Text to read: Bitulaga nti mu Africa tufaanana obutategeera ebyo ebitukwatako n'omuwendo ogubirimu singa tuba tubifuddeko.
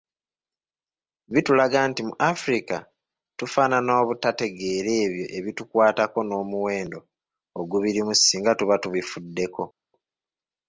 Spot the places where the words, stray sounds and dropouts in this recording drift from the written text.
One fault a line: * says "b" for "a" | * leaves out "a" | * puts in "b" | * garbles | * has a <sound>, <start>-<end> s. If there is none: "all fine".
all fine